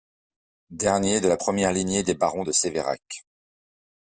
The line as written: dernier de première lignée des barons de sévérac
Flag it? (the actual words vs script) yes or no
yes